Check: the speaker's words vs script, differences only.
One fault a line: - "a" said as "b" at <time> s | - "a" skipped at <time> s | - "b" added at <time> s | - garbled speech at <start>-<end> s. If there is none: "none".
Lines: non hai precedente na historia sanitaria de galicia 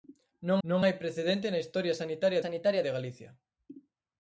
- "non" added at 0.7 s
- "sanitaria" added at 2.4 s